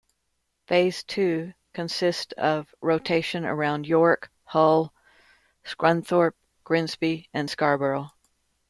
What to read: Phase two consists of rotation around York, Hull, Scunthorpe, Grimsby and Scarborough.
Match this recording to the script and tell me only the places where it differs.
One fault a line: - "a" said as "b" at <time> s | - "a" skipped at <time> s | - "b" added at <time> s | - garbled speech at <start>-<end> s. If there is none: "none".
none